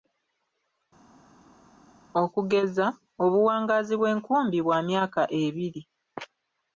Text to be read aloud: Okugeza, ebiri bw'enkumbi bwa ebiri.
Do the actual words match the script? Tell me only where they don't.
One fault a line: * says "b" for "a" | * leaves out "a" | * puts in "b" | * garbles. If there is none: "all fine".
* says "obuwangaazi" for "ebiri"
* puts in "myaka"